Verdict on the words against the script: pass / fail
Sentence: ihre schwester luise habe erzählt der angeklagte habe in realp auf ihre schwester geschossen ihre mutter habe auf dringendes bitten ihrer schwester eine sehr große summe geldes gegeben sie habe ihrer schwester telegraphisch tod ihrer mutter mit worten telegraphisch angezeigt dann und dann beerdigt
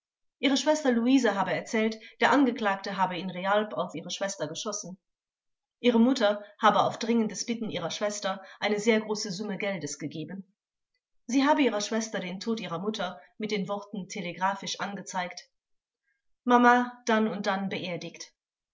fail